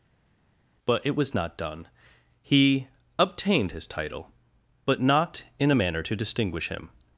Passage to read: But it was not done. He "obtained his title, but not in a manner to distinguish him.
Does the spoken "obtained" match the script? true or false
true